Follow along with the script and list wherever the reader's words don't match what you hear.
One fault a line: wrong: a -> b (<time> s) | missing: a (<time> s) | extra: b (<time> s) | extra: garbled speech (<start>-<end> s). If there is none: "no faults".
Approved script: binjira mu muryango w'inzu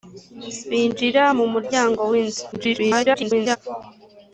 extra: garbled speech (2.5-3.6 s)